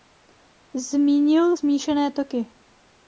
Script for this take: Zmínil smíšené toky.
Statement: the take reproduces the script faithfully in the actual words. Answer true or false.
true